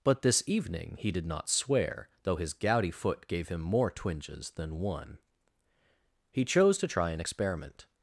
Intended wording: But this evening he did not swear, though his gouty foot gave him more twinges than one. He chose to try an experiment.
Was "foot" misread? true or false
false